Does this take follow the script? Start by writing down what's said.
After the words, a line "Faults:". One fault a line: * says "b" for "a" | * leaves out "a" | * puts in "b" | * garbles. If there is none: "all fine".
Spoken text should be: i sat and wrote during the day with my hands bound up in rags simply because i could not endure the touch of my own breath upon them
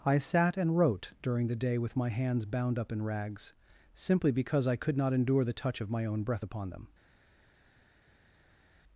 i sat and wrote during the day with my hands bound up in rags simply because i could not endure the touch of my own breath upon them
Faults:
all fine